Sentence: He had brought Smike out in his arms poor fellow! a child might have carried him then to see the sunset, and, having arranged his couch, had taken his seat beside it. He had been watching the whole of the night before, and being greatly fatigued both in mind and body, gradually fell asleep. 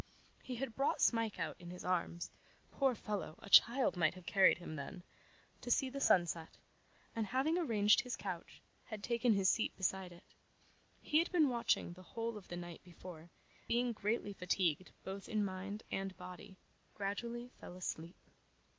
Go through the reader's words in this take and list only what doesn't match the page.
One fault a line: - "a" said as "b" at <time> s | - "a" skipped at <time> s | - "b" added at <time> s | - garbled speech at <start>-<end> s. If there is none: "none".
- "and" skipped at 13.3 s